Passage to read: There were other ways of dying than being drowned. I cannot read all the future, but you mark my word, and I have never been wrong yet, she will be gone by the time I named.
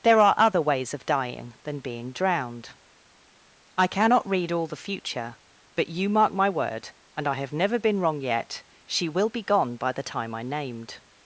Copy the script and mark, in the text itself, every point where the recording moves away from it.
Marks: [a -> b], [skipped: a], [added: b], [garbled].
There [were -> are] other ways of dying than being drowned. I cannot read all the future, but you mark my word, and I have never been wrong yet, she will be gone by the time I named.